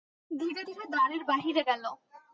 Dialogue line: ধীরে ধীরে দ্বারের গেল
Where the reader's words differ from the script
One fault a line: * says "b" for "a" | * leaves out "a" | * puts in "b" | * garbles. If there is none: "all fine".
* puts in "বাহিরে"